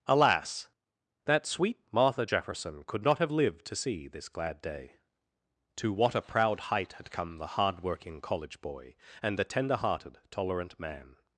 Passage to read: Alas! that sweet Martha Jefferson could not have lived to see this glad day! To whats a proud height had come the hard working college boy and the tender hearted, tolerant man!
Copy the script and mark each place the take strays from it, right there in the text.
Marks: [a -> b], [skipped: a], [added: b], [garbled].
Alas! that sweet Martha Jefferson could not have lived to see this glad day! To [whats -> what] a proud height had come the hard working college boy and the tender hearted, tolerant man!